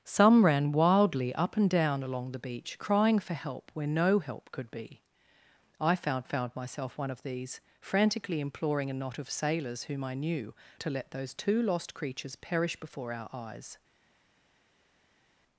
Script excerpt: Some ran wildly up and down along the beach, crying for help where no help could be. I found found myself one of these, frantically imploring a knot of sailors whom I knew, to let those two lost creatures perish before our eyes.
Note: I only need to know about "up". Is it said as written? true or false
true